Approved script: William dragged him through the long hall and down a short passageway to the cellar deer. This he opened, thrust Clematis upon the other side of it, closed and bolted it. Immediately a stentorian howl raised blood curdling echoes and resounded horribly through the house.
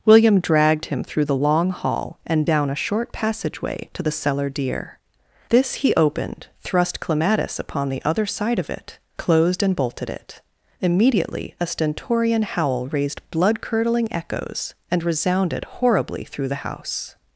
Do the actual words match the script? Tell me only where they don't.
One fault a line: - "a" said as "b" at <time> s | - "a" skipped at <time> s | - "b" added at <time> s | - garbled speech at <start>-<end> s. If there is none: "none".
none